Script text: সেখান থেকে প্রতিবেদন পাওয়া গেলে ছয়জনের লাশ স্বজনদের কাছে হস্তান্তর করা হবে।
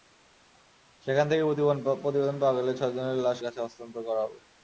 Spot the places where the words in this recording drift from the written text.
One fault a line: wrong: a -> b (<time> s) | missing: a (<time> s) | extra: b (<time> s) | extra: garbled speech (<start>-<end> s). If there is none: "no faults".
missing: স্বজনদের (3.4 s)